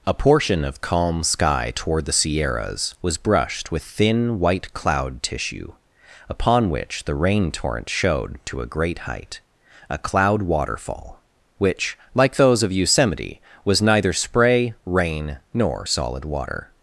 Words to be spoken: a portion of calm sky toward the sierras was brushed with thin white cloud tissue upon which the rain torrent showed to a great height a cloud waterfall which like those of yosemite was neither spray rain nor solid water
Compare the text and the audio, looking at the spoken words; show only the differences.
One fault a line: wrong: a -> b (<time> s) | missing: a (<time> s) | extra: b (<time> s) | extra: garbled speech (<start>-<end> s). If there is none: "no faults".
no faults